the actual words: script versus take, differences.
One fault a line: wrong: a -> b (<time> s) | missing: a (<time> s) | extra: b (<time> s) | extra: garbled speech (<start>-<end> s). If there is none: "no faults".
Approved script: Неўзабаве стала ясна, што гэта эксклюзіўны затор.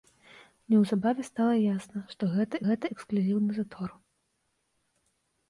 extra: гэта (2.7 s)